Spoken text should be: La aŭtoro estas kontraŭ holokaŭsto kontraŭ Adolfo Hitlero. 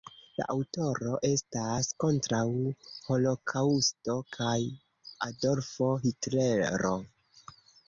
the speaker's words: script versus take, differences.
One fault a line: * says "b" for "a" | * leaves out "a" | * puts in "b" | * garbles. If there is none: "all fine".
* says "kaj" for "kontraŭ"